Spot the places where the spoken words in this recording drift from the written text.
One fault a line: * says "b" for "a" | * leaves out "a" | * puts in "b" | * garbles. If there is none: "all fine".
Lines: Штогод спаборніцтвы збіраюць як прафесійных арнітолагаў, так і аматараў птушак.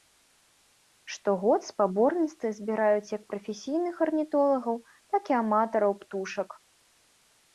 all fine